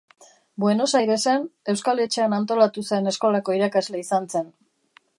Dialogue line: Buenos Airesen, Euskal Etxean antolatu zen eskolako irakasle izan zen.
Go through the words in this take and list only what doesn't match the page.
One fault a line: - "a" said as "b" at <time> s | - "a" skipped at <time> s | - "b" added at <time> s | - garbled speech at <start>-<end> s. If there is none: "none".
none